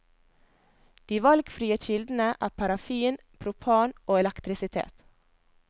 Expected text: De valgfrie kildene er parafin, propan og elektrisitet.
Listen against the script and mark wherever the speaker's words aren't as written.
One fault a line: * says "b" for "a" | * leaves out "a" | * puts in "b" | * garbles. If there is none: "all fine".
all fine